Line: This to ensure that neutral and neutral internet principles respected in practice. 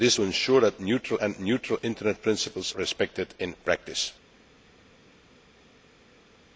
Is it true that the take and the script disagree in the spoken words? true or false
false